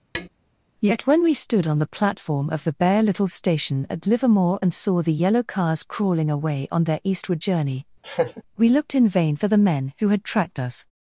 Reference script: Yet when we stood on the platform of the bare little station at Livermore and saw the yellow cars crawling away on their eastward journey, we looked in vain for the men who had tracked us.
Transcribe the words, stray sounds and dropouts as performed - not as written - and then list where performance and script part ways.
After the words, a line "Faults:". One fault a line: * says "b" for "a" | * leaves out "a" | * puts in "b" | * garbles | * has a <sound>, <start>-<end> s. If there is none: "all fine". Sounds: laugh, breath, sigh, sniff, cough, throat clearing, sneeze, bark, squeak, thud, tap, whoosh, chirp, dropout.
Yet when we stood on the platform of the bare little station at Livermore and saw the yellow cars crawling away on their eastward journey, we looked in vain for the men who had tracked us.
Faults:
* has a tap, 0.1-0.3 s
* has a laugh, 8.0-8.4 s